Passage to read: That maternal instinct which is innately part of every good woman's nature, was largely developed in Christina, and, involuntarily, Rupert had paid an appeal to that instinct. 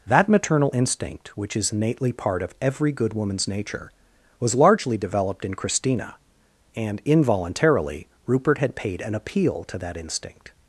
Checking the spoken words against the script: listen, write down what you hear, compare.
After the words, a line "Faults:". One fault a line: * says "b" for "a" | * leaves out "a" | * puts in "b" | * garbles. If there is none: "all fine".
That maternal instinct which is innately part of every good woman's nature, was largely developed in Christina, and, involuntarily, Rupert had paid an appeal to that instinct.
Faults:
all fine